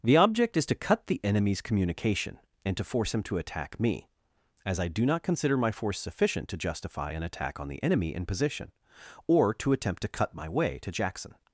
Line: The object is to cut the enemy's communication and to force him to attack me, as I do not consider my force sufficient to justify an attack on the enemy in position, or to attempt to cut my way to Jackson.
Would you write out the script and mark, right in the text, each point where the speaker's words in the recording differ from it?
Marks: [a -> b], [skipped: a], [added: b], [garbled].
The object is to cut the enemy's communication and to force him to attack me, as I do not consider my force sufficient to justify an attack on the enemy in position, or to attempt to cut my way to Jackson.